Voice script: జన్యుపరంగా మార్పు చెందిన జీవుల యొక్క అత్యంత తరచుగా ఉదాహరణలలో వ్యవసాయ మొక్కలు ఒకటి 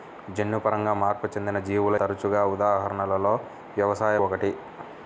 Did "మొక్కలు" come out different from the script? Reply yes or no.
yes